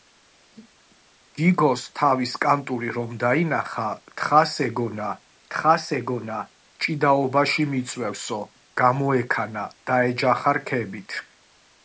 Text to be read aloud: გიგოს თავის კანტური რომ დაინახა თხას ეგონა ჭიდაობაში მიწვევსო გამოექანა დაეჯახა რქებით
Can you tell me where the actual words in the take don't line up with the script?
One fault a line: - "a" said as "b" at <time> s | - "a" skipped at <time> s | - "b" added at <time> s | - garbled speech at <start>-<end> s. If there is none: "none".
- "თხას ეგონა" added at 5.5 s